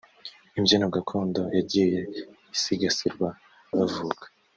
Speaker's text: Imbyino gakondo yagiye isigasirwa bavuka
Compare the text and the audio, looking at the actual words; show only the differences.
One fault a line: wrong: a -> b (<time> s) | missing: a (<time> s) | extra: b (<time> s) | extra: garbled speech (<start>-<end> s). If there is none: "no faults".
no faults